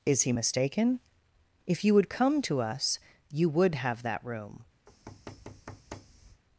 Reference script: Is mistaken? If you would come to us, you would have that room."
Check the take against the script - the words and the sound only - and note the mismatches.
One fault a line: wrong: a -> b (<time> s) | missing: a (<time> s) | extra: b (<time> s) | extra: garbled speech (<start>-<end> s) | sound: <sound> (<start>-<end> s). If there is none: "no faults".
extra: he (0.2 s)
sound: thud (4.9-6.4 s)